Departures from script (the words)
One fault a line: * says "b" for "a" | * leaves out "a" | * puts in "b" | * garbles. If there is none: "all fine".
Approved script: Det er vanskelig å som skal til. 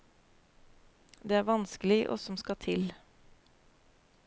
all fine